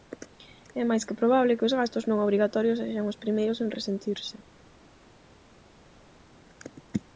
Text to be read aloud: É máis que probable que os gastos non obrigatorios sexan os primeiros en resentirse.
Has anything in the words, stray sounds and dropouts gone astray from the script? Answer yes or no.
no